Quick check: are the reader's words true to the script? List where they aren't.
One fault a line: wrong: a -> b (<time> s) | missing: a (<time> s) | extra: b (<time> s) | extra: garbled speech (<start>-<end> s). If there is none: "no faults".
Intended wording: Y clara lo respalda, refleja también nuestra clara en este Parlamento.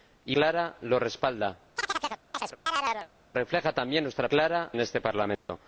no faults